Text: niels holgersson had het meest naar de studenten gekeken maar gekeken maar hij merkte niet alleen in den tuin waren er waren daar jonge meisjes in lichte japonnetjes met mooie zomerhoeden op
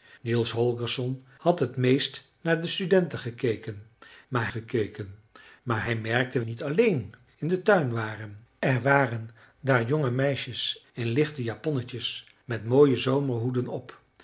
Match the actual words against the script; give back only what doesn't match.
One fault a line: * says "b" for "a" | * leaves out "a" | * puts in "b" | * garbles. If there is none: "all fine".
all fine